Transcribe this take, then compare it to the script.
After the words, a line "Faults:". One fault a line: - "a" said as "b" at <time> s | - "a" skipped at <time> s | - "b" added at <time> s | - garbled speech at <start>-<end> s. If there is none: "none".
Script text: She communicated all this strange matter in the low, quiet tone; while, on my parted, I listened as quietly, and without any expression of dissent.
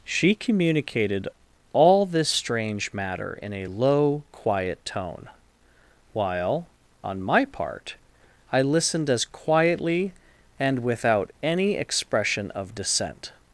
She communicated all this strange matter in a low, quiet tone; while, on my part, I listened as quietly, and without any expression of dissent.
Faults:
- "the" said as "a" at 3.5 s
- "parted" said as "part" at 7.4 s